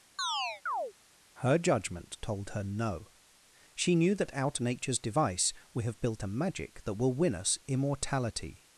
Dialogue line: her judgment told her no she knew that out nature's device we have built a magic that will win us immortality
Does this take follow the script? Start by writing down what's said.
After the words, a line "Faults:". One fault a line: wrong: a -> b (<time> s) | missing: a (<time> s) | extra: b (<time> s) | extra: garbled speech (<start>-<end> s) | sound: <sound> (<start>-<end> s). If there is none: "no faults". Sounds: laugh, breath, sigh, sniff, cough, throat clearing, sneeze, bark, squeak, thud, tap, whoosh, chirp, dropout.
her judgment told her no she knew that out nature's device we have built a magic that will win us immortality
Faults:
sound: chirp (0.2-0.9 s)